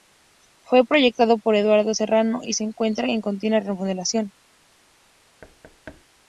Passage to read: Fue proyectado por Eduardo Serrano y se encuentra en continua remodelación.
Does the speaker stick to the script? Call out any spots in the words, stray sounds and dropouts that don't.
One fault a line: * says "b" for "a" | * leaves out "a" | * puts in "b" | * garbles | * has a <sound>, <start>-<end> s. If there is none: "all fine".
* has a thud, 5.4-6.0 s